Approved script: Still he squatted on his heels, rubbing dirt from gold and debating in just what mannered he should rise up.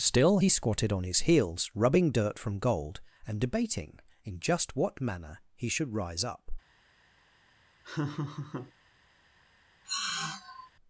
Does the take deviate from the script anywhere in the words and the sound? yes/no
yes